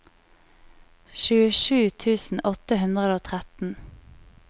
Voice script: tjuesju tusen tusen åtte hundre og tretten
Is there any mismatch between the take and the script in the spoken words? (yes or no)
yes